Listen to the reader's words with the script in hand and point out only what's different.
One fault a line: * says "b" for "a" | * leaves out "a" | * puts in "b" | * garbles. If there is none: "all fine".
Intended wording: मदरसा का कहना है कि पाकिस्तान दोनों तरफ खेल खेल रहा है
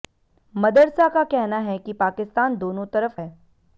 * leaves out "खेल खेल रहा"